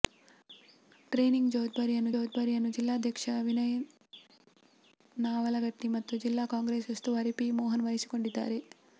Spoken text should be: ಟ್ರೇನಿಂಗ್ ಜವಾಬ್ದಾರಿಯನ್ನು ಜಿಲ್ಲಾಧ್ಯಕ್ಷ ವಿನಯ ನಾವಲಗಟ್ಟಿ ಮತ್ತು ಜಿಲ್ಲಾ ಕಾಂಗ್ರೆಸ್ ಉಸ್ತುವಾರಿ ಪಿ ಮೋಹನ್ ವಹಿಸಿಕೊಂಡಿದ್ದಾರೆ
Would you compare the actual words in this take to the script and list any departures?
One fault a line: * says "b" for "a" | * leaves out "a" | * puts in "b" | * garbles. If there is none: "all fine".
* puts in "ಜವಾಬ್ದಾರಿಯನ್ನು"